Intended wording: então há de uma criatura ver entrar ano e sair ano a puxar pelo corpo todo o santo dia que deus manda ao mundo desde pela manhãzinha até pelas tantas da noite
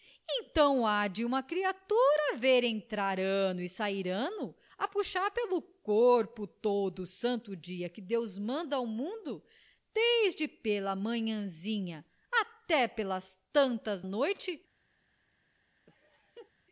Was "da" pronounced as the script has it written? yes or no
no